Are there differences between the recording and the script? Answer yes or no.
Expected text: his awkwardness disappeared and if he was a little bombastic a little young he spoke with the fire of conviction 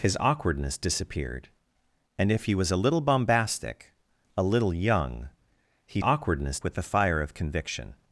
yes